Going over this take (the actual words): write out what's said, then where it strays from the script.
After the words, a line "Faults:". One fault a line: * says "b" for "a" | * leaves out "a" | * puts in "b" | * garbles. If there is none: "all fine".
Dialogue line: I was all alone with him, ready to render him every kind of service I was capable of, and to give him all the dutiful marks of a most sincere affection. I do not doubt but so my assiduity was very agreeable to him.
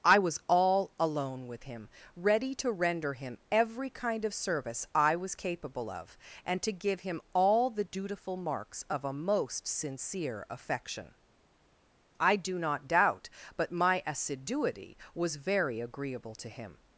I was all alone with him, ready to render him every kind of service I was capable of, and to give him all the dutiful marks of a most sincere affection. I do not doubt but my assiduity was very agreeable to him.
Faults:
* leaves out "so"